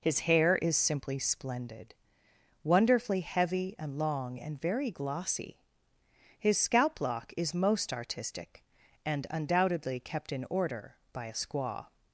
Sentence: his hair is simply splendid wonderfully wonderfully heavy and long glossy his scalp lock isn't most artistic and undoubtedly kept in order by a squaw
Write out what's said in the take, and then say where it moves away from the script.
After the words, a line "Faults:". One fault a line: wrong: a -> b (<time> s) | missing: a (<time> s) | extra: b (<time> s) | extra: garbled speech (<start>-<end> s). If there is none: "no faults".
his hair is simply splendid wonderfully heavy and long and very glossy his scalp lock is most artistic and undoubtedly kept in order by a squaw
Faults:
missing: wonderfully (3.2 s)
extra: and very (4.4 s)
wrong: isn't -> is (7.3 s)